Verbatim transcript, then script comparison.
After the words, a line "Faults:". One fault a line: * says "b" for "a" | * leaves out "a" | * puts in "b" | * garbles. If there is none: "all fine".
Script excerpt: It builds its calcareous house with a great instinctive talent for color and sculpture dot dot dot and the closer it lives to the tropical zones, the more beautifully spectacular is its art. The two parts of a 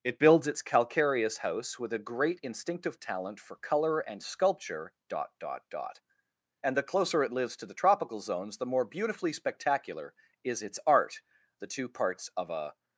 It builds its calcareous house with a great instinctive talent for color and sculpture dot dot dot and the closer it lives to the tropical zones, the more beautifully spectacular is its art. The two parts of a
Faults:
all fine